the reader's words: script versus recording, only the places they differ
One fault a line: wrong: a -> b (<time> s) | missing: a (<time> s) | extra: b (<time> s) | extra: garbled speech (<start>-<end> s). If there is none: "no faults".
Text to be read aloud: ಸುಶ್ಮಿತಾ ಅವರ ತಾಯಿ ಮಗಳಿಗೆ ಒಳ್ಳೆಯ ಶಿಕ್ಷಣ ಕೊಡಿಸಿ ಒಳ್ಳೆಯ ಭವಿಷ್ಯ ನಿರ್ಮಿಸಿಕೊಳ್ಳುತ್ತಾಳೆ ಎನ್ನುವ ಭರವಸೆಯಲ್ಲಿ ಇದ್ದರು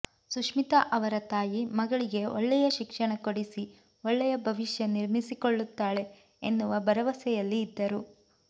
no faults